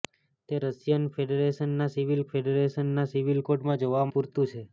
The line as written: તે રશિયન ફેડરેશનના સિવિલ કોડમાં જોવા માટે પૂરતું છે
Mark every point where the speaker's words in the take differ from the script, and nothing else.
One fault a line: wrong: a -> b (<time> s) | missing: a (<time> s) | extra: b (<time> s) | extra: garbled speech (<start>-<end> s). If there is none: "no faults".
extra: ફેડરેશનના સિવિલ (2.3 s)
missing: માટે (4.0 s)